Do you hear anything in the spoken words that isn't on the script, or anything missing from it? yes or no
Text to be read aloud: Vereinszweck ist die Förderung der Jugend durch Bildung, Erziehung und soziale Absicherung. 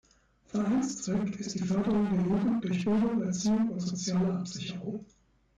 no